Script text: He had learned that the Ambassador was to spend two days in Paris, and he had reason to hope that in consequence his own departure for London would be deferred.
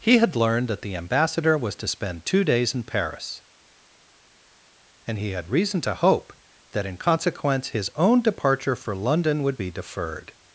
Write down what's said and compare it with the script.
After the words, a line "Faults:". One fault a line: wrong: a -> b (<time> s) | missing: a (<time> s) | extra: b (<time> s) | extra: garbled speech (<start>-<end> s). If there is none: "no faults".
He had learned that the Ambassador was to spend two days in Paris, and he had reason to hope that in consequence his own departure for London would be deferred.
Faults:
no faults